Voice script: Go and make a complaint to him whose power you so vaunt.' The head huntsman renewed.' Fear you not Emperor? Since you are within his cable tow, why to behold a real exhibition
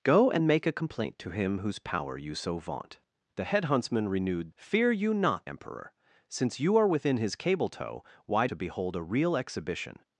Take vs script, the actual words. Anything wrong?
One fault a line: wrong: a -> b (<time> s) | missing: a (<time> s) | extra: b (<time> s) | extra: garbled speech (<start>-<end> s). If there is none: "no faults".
no faults